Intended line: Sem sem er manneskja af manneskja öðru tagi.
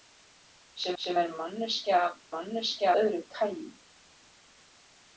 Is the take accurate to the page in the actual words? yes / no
yes